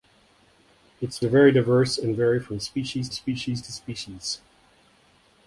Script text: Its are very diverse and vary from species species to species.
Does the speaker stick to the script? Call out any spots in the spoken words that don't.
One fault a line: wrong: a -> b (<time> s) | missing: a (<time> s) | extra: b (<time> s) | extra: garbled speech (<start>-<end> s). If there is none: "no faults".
no faults